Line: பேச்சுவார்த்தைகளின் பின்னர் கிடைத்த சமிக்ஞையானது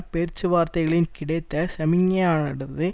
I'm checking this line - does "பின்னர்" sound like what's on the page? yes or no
no